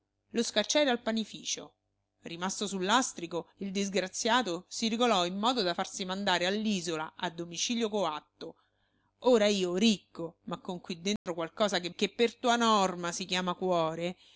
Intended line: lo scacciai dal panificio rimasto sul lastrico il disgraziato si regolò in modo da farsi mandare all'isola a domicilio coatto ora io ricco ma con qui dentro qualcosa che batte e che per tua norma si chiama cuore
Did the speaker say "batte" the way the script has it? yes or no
no